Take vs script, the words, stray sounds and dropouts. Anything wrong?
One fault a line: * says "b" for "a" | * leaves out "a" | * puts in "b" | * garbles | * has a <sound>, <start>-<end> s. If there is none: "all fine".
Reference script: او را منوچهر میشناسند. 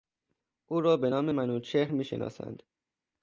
* puts in "به نام"